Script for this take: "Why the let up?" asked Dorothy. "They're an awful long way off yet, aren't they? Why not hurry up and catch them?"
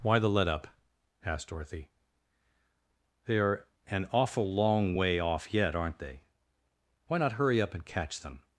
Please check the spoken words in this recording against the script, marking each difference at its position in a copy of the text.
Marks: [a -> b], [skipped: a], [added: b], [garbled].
"Why the let up?" asked Dorothy. "They're an awful long way off yet, aren't they? Why not hurry up and catch them?"